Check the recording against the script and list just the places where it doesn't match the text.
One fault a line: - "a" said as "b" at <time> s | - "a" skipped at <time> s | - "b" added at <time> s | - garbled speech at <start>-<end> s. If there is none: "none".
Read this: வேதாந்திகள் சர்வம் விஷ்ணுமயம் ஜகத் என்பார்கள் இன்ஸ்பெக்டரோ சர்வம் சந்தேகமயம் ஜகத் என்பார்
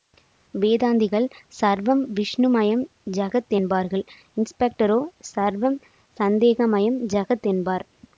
none